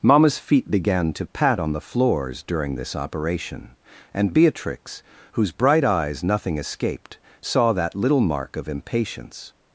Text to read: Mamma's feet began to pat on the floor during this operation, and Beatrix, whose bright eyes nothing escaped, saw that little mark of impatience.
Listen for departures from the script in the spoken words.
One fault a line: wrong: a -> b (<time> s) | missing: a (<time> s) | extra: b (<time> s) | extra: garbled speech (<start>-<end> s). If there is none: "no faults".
wrong: floor -> floors (1.8 s)